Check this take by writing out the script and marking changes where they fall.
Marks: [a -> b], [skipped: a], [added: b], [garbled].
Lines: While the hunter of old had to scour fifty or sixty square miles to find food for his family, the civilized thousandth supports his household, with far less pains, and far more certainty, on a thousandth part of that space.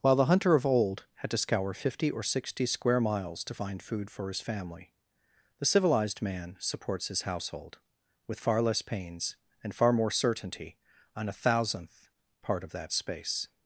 While the hunter of old had to scour fifty or sixty square miles to find food for his family, the civilized [thousandth -> man] supports his household, with far less pains, and far more certainty, on a thousandth part of that space.